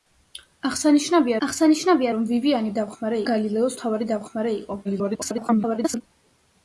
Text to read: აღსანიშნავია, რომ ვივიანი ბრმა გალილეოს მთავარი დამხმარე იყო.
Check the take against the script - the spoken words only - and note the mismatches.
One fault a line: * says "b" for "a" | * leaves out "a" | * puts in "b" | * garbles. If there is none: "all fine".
* puts in "აღსანიშნავია"
* says "დამხმარე" for "ბრმა"
* garbles